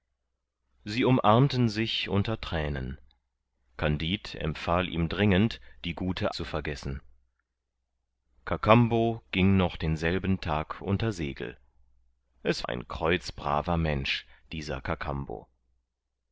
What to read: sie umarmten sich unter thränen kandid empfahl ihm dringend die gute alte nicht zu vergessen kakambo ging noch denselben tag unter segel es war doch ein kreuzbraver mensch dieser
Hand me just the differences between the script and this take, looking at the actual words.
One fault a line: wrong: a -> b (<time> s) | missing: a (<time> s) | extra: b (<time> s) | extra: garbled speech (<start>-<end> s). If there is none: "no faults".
missing: alte nicht (6.3 s)
missing: war doch (12.7 s)